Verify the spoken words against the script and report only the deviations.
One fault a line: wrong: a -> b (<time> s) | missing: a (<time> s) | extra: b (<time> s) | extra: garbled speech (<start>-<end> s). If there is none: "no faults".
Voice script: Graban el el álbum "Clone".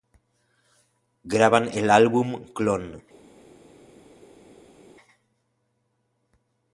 missing: el (1.9 s)